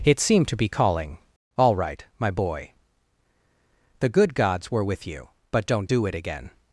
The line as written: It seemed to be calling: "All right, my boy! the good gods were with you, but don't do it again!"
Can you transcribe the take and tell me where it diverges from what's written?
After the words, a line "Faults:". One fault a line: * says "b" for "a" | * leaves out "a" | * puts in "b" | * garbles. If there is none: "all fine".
It seemed to be calling: "All right, my boy! the good gods were with you, but don't do it again!"
Faults:
all fine